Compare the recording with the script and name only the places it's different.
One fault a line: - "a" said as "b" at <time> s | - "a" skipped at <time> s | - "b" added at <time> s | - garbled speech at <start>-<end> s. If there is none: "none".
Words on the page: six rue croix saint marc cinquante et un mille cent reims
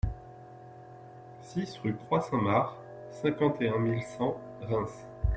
none